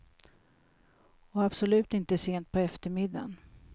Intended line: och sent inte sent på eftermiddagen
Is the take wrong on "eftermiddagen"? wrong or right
right